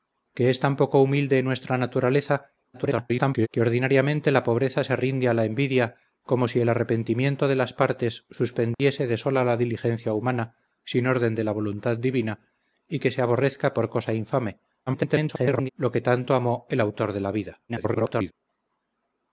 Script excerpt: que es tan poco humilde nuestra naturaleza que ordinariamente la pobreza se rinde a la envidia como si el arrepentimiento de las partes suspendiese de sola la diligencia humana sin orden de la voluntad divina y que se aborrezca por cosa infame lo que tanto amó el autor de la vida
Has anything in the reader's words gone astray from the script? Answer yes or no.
yes